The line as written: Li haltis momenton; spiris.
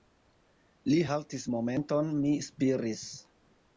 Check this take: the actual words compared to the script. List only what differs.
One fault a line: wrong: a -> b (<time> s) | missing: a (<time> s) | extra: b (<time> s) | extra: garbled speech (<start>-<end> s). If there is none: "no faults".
extra: mi (2.2 s)